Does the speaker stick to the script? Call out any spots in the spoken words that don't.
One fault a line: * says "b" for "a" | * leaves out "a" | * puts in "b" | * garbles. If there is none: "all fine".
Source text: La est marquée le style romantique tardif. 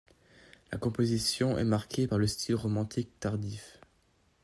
* puts in "composition"
* puts in "par"